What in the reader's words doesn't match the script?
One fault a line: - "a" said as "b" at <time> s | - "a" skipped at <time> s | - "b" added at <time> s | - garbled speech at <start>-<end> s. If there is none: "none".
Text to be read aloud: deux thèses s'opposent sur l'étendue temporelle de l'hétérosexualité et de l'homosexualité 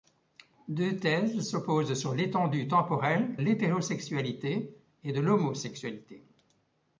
- "de" skipped at 3.4 s